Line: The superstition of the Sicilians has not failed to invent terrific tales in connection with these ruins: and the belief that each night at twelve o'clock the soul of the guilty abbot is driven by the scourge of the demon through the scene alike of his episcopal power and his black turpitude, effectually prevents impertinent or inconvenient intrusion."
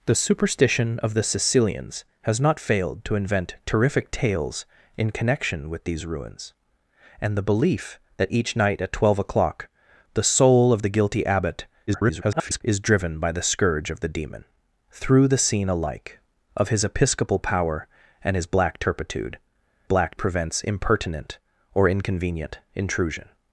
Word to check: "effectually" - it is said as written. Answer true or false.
false